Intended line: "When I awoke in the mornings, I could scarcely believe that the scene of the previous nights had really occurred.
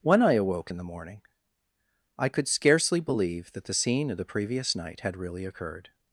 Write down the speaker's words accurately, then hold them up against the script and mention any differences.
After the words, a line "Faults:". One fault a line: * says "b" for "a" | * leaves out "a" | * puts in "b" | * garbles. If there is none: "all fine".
"When I awoke in the morning, I could scarcely believe that the scene of the previous night had really occurred.
Faults:
* says "morning" for "mornings"
* says "night" for "nights"